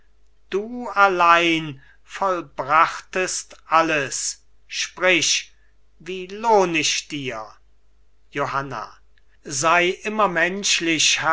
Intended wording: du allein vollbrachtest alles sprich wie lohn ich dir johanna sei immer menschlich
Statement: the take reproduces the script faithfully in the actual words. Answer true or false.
true